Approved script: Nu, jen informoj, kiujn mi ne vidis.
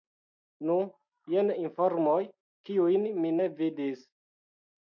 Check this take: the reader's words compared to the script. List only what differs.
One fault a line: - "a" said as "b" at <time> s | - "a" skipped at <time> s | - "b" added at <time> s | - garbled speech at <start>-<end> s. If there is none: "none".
none